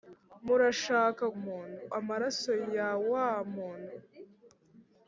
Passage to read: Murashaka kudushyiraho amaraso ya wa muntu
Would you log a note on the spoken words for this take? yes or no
yes